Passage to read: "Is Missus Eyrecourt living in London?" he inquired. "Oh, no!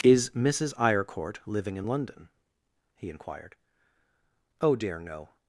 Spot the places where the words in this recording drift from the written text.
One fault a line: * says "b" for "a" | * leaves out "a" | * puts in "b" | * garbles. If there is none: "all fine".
* puts in "dear"